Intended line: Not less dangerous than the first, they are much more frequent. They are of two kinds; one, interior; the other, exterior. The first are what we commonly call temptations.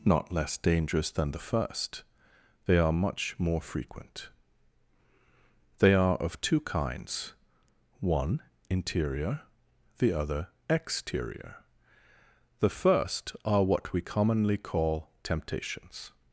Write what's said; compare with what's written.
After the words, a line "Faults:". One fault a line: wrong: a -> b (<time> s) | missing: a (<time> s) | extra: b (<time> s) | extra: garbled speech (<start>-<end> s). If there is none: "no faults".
Not less dangerous than the first, they are much more frequent. They are of two kinds; one, interior; the other, exterior. The first are what we commonly call temptations.
Faults:
no faults